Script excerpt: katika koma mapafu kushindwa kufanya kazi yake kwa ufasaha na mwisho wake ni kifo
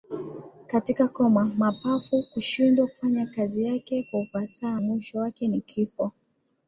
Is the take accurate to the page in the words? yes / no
no